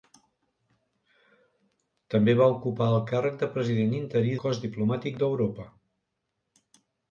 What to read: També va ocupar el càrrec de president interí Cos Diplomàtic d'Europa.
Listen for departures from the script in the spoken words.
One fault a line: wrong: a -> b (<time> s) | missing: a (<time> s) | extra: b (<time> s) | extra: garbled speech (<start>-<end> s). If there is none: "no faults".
no faults